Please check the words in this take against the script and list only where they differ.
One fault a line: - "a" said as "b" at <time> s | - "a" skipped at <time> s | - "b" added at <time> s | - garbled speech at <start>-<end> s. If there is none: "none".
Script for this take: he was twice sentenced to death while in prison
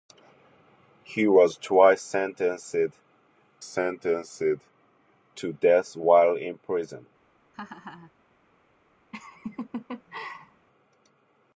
- "sentenced" added at 3.6 s